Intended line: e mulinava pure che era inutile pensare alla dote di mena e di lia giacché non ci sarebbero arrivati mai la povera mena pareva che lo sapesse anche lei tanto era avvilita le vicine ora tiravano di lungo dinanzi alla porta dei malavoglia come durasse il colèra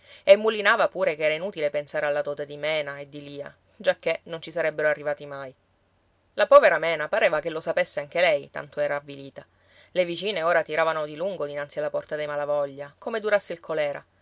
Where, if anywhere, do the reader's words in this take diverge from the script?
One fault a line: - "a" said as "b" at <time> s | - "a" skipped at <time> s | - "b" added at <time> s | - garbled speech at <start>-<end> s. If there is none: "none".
none